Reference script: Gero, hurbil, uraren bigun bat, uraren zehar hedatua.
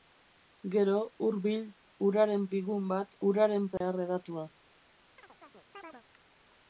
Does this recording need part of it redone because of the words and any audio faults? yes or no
yes